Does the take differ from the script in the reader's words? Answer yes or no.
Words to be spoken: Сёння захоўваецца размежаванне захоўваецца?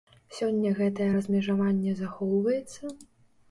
yes